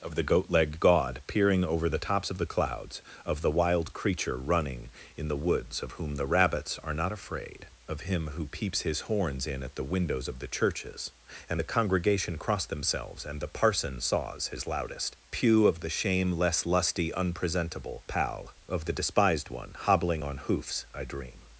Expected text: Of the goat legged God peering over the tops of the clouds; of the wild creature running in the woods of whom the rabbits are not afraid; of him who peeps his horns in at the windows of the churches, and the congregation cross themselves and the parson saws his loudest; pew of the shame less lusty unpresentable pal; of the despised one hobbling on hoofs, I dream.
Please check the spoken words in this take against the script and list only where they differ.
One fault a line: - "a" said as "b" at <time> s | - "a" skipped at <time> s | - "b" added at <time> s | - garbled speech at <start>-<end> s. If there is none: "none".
none